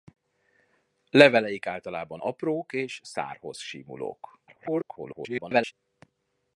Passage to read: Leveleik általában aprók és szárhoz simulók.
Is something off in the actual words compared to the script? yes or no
yes